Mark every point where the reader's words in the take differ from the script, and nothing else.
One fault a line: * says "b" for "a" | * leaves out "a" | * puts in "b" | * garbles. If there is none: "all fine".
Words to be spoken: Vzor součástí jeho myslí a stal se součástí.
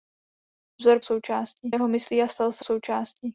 all fine